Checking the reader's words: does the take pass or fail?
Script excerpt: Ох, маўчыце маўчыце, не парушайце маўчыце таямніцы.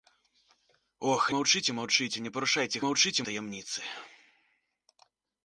pass